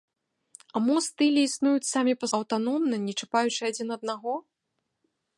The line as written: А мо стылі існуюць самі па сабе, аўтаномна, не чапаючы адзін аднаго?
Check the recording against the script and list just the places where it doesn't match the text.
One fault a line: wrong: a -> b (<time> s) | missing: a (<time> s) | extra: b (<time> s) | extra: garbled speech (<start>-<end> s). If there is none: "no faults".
missing: сабе (2.3 s)